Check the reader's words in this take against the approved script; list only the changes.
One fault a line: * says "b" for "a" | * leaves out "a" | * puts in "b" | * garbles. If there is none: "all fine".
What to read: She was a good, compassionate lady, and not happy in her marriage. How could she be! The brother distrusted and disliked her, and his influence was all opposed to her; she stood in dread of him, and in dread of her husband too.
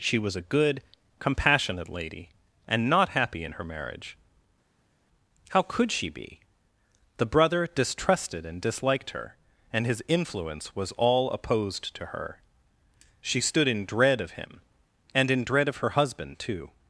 all fine